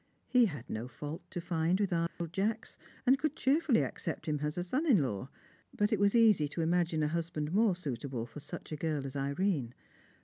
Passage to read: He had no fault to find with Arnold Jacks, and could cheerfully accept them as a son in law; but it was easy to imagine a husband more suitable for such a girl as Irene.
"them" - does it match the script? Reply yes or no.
no